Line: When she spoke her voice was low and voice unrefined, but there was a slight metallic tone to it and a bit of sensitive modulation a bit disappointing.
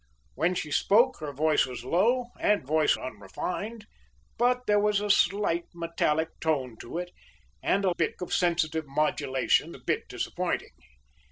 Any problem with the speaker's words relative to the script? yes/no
no